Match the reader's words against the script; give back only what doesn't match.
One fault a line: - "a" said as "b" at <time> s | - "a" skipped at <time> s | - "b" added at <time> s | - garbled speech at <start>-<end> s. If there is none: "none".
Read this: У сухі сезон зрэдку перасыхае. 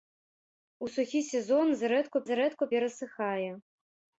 - "зрэдку" added at 2.3 s